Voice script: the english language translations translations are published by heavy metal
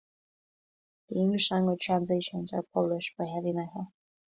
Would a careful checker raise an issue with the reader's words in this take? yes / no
yes